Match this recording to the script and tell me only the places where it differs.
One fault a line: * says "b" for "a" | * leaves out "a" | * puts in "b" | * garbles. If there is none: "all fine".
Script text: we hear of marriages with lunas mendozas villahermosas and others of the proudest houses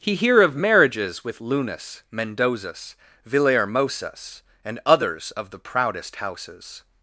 * says "he" for "we"